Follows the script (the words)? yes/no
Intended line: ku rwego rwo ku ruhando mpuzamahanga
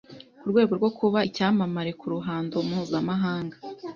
no